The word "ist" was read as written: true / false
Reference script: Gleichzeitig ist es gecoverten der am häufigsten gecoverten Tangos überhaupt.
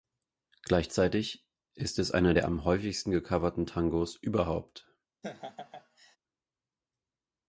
true